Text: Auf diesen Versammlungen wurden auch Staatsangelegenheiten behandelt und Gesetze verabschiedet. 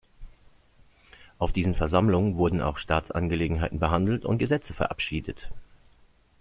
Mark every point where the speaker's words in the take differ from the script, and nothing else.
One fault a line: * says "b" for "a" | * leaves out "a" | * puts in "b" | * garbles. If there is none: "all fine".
all fine